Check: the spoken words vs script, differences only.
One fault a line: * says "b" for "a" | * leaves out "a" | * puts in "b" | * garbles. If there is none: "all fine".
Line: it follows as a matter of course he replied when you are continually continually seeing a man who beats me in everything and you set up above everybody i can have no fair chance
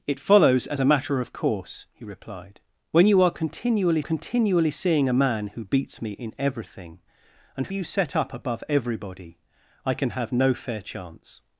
all fine